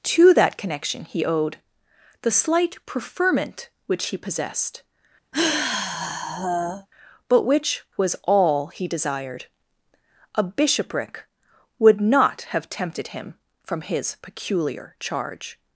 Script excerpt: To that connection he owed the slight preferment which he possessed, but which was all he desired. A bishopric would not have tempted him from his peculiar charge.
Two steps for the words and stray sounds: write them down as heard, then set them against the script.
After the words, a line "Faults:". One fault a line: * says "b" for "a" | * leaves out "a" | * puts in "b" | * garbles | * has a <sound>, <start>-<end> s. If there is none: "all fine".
To that connection he owed the slight preferment which he possessed, but which was all he desired. A bishopric would not have tempted him from his peculiar charge.
Faults:
* has a sigh, 5.3-6.9 s